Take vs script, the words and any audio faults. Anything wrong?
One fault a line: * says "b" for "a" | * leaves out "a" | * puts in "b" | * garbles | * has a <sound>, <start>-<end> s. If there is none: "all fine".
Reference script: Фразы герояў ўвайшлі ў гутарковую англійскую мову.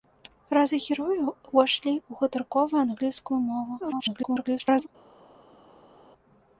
* garbles